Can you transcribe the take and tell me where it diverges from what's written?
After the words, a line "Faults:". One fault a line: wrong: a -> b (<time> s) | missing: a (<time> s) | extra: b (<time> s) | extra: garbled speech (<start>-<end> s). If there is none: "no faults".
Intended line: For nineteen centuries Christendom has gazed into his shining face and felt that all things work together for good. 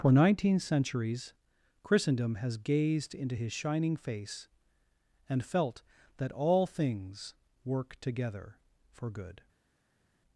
For nineteen centuries Christendom has gazed into his shining face and felt that all things work together for good.
Faults:
no faults